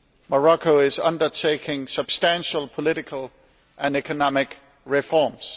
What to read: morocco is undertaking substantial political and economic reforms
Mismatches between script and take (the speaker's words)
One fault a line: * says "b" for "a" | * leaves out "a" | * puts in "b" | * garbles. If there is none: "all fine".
all fine